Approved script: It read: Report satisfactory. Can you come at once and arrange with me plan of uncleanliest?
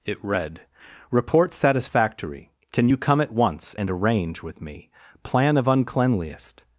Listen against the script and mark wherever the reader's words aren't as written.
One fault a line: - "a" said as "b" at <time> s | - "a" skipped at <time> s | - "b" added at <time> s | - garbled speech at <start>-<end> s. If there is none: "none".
none